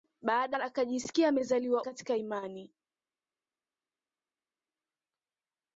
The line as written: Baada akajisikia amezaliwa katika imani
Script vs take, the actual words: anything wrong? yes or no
no